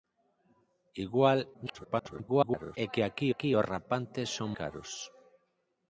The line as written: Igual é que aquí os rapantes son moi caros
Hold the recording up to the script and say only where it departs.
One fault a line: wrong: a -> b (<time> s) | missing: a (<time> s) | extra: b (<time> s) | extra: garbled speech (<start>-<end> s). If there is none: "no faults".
extra: garbled speech (1.5-2.8 s)
extra: aquí (3.3 s)
missing: moi (4.5 s)